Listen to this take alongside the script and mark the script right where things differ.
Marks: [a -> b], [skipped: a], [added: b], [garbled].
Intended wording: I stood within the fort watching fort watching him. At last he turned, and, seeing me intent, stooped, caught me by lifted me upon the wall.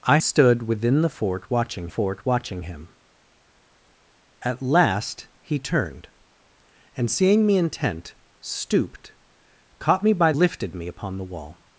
I stood within the fort watching fort watching him. At last he turned, and, seeing me intent, stooped, caught me by lifted me upon the wall.